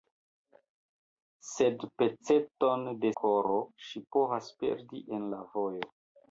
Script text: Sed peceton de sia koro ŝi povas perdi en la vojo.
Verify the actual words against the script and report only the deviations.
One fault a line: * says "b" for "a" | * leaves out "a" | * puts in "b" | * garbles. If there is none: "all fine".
* leaves out "sia"